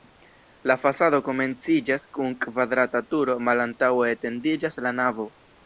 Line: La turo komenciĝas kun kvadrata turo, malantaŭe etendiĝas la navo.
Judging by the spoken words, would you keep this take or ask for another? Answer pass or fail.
fail